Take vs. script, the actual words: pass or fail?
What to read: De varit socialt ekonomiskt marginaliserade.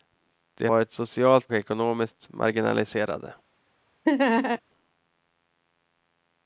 pass